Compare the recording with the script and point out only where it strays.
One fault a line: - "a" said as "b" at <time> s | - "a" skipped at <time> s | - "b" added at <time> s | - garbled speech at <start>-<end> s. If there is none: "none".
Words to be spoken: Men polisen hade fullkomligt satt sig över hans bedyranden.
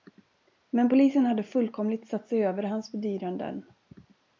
none